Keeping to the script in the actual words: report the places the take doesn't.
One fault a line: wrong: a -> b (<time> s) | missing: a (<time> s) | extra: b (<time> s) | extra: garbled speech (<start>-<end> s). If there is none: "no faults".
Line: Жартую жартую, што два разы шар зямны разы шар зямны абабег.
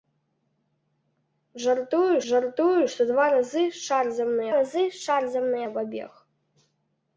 no faults